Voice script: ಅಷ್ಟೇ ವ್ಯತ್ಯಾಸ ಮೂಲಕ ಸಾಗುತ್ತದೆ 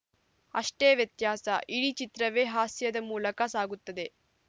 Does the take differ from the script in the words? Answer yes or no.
yes